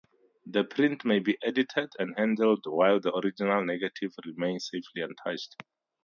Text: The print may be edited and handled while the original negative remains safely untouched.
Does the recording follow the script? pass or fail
pass